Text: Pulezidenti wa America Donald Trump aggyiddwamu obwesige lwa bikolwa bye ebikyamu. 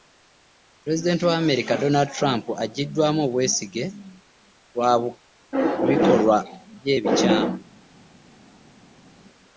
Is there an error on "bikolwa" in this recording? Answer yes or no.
no